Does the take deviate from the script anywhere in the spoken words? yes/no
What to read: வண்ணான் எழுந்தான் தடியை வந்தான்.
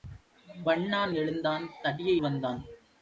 no